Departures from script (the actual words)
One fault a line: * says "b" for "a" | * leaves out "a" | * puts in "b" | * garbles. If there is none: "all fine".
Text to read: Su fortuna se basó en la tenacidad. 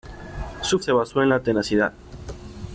* leaves out "fortuna"